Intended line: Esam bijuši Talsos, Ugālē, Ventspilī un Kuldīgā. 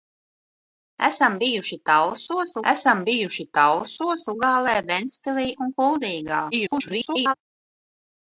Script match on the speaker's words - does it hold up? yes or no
no